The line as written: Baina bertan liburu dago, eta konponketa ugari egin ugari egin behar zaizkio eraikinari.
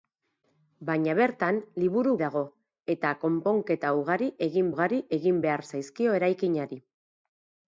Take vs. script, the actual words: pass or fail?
pass